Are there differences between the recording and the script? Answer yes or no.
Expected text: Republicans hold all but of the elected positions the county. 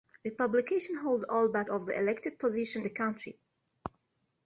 no